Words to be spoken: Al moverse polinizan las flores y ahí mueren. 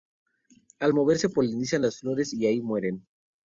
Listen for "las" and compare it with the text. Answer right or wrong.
right